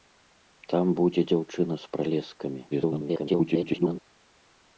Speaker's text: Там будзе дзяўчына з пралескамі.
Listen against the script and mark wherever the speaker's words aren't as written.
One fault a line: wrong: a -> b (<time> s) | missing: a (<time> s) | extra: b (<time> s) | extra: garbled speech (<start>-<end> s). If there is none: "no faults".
extra: garbled speech (2.7-4.0 s)